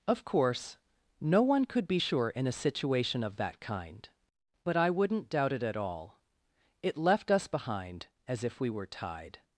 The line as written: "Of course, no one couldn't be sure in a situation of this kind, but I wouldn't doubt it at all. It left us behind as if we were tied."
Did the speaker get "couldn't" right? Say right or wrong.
wrong